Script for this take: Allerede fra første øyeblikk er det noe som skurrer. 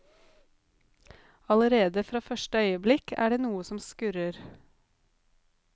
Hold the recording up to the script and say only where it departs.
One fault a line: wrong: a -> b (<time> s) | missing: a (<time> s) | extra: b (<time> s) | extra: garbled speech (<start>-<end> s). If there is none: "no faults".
no faults